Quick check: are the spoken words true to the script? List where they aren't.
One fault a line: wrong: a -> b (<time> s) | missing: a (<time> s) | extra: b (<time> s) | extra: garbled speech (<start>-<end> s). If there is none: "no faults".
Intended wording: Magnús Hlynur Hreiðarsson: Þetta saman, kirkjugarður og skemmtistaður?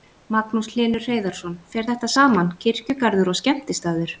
extra: Fer (1.8 s)